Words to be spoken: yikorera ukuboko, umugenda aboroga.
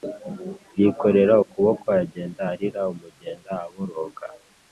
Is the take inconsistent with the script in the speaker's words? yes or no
yes